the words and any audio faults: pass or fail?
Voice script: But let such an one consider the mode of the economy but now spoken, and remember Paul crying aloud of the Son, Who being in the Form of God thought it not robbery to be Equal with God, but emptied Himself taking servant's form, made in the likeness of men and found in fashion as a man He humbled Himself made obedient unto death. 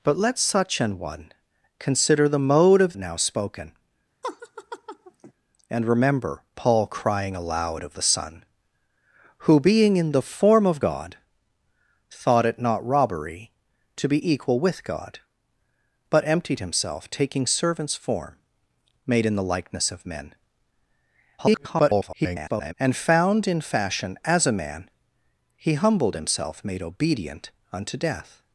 fail